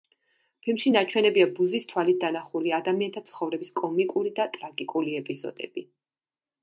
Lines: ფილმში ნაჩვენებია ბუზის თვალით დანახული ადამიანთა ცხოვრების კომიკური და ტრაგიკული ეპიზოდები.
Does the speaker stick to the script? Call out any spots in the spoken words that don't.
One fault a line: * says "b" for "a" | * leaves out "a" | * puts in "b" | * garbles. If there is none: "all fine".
all fine